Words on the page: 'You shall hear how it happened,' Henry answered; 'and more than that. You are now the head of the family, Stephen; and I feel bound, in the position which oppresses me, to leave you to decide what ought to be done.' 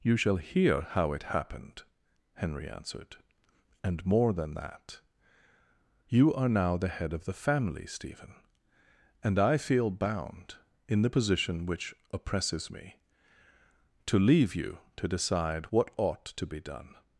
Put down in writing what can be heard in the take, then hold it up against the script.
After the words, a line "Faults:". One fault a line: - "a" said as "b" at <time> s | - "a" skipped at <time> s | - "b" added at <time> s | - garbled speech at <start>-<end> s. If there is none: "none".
'You shall hear how it happened,' Henry answered; 'and more than that. You are now the head of the family, Stephen; and I feel bound, in the position which oppresses me, to leave you to decide what ought to be done.'
Faults:
none